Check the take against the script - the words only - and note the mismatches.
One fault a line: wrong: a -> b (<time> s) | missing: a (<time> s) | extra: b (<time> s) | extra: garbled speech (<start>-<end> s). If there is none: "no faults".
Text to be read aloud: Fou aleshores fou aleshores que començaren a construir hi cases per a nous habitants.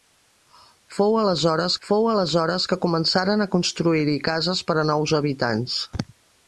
no faults